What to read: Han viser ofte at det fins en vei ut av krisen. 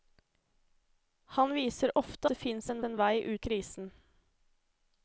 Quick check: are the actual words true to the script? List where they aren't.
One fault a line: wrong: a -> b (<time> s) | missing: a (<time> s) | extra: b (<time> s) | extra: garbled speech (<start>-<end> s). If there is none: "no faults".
missing: at (2.3 s)
extra: en (2.8 s)
missing: av (3.5 s)